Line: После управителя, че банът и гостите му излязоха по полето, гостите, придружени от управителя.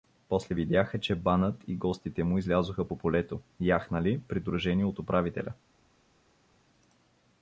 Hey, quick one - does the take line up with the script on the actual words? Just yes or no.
no